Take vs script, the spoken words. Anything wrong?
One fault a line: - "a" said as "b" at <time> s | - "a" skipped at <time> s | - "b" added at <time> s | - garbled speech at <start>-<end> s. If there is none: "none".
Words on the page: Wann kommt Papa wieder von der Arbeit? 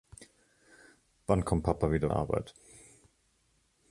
- "von" skipped at 2.1 s